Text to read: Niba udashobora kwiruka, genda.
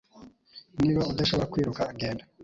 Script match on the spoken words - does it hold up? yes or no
yes